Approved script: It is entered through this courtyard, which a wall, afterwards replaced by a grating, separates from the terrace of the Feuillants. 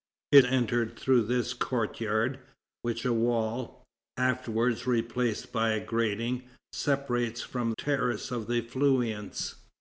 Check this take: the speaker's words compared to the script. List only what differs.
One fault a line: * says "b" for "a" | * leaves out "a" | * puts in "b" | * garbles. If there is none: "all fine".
* leaves out "is"
* leaves out "the"